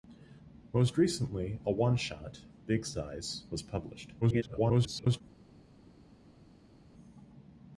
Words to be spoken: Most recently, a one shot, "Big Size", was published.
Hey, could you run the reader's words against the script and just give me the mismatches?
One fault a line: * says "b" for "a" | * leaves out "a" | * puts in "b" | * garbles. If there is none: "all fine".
* garbles